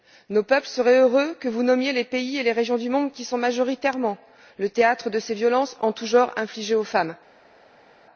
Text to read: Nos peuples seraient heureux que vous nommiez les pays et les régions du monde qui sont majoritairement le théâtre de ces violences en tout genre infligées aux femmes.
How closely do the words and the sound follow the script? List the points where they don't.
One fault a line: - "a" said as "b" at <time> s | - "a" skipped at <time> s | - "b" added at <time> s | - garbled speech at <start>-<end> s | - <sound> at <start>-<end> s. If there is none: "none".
none